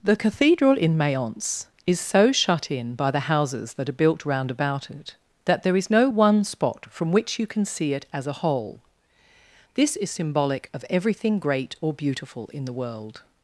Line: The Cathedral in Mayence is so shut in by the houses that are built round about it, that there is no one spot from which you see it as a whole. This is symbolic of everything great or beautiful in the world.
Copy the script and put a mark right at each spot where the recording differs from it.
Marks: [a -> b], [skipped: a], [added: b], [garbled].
The Cathedral in Mayence is so shut in by the houses that are built round about it, that there is no one spot from which you [added: can] see it as a whole. This is symbolic of everything great or beautiful in the world.